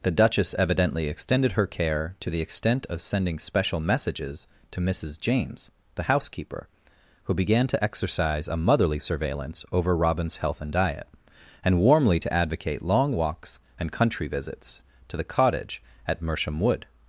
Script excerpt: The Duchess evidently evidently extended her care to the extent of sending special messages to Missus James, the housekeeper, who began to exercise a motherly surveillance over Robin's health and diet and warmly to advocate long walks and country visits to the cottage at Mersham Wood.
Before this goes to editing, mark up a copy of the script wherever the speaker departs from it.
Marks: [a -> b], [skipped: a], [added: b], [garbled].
The Duchess evidently [skipped: evidently] extended her care to the extent of sending special messages to Missus James, the housekeeper, who began to exercise a motherly surveillance over Robin's health and diet and warmly to advocate long walks and country visits to the cottage at Mersham Wood.